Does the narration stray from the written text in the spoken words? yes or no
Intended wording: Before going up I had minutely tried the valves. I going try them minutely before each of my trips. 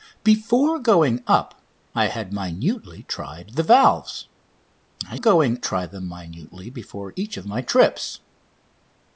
no